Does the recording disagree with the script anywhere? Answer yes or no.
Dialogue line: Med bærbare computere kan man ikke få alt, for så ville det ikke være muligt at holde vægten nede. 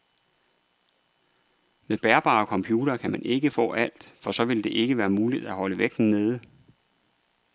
no